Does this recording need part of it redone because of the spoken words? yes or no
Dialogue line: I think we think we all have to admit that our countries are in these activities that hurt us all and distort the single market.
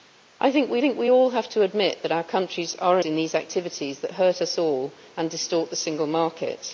no